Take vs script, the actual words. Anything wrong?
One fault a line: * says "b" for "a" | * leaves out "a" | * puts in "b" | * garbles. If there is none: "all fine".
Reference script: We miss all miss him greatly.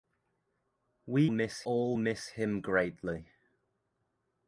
all fine